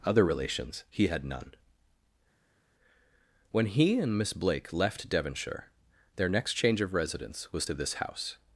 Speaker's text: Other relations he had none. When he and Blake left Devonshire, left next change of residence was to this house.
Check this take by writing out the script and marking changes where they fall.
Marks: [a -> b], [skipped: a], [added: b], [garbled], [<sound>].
Other relations he had none. When he and [added: Miss] Blake left Devonshire, [left -> their] next change of residence was to this house.